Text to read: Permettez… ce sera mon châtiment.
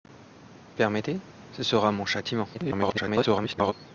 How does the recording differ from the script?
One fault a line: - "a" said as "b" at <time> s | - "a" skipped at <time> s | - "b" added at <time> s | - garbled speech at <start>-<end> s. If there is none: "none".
- garbled speech at 2.5-3.7 s